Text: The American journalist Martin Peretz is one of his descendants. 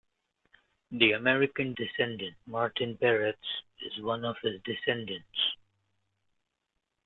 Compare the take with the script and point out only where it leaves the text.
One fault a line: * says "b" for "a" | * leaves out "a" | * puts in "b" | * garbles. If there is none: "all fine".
* says "descendants" for "journalist"